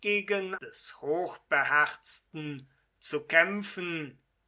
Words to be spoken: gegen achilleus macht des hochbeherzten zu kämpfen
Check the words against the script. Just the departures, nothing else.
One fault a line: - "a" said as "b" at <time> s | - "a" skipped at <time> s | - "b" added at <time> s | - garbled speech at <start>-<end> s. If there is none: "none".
- "achilleus macht" skipped at 0.6 s